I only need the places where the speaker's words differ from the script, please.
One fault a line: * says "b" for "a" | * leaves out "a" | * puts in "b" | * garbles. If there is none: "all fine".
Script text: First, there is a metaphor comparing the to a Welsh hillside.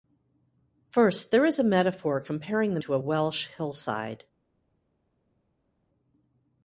all fine